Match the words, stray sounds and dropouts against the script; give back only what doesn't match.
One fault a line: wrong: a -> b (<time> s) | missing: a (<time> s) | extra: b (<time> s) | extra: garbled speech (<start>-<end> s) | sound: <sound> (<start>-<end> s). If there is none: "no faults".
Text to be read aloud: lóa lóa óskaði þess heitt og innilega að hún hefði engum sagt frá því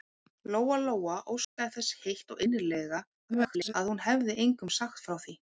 sound: dropout (1.4-1.6 s)
extra: garbled speech (3.3-3.7 s)